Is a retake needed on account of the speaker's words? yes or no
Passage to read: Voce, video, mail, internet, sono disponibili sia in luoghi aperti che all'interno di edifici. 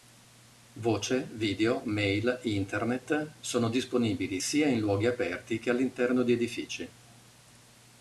no